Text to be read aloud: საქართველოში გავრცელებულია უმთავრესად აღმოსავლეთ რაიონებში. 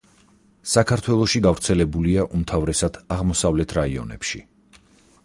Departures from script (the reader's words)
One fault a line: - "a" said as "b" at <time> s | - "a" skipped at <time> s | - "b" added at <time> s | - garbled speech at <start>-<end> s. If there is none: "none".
none